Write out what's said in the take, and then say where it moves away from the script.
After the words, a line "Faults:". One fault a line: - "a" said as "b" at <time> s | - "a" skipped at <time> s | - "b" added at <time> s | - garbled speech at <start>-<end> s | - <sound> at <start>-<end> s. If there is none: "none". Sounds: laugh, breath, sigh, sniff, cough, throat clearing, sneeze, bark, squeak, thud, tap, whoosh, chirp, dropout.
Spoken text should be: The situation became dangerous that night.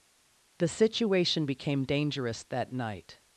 The situation became dangerous that night.
Faults:
none